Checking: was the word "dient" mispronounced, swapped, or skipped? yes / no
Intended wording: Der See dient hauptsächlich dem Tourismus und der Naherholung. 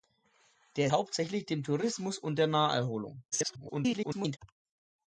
yes